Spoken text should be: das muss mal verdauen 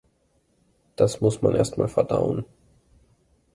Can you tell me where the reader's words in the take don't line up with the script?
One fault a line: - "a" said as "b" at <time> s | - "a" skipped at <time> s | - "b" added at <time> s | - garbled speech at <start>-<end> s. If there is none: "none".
- "man erst" added at 1.4 s